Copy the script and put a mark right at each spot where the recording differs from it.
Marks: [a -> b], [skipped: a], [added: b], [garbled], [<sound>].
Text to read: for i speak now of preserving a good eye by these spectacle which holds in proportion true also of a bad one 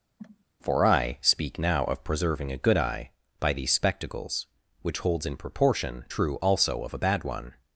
[cough] for i speak now of preserving a good eye by these [spectacle -> spectacles] which holds in proportion true also of a bad one